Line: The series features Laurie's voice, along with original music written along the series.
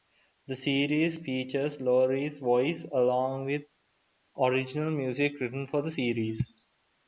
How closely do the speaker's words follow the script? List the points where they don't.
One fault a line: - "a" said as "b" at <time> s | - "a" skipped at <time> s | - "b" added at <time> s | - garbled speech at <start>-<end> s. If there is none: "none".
- "along" said as "for" at 5.7 s